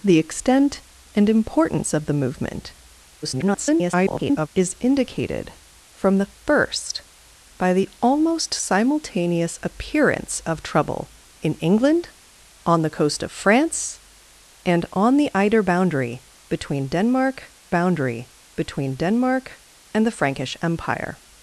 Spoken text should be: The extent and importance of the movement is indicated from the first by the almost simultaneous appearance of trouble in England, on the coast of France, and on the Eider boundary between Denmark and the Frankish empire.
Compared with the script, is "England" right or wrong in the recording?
right